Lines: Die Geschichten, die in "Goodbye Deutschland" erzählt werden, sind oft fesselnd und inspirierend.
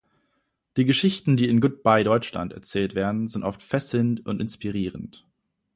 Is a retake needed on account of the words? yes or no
no